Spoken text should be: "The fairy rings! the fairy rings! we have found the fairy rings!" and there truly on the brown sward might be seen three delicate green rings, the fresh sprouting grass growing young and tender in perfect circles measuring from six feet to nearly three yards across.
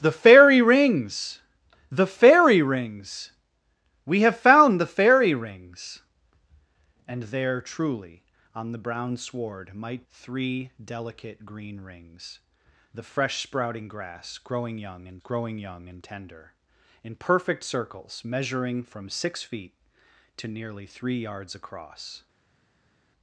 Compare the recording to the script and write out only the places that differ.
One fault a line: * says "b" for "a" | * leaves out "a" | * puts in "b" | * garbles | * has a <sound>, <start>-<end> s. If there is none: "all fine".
* leaves out "be seen"
* puts in "growing young and"